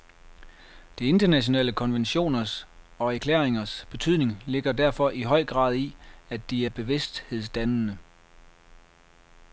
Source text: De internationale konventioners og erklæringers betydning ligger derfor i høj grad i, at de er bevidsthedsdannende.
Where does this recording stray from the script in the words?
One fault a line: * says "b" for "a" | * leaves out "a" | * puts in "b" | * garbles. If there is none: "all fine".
all fine